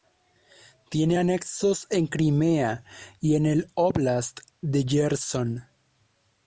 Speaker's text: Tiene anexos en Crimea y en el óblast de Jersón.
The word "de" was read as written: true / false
true